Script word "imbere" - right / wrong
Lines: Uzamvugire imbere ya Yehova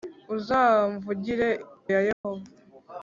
wrong